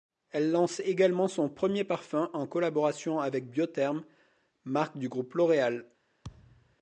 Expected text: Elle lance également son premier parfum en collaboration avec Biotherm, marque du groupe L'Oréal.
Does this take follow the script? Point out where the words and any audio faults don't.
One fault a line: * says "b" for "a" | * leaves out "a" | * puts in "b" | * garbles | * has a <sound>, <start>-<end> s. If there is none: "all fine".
* has a thud, 6.2-6.8 s